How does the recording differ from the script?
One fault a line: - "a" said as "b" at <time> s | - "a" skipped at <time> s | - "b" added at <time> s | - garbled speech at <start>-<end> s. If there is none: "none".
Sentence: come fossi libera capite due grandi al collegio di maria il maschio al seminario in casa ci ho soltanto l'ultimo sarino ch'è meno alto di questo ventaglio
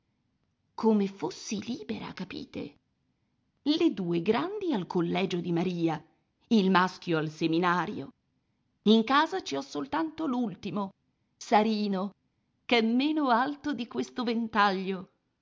- "le" added at 3.6 s